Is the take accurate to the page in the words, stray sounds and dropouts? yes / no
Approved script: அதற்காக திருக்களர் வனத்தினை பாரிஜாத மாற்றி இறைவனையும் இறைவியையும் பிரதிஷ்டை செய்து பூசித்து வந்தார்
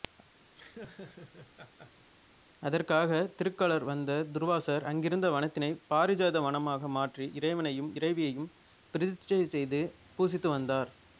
no